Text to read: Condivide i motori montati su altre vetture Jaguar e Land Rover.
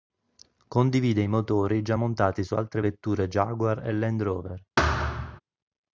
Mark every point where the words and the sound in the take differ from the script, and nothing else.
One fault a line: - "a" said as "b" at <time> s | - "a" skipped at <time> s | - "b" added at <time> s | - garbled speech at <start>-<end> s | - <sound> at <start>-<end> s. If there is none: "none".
- "già" added at 1.8 s
- thud at 4.8-5.4 s